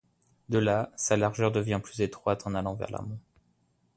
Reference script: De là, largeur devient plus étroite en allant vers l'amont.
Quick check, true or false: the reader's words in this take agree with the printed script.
false